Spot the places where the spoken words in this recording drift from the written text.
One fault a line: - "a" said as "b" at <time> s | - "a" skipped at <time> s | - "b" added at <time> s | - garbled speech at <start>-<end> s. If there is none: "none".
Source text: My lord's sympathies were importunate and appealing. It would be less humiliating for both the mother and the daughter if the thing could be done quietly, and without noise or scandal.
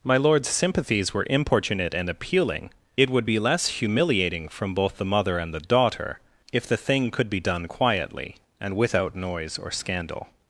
- "for" said as "from" at 4.5 s